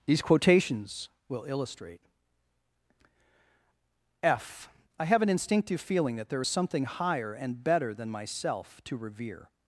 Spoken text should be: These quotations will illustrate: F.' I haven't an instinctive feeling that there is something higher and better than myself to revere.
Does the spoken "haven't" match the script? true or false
false